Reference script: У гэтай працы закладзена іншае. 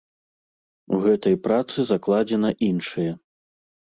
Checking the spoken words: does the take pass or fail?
pass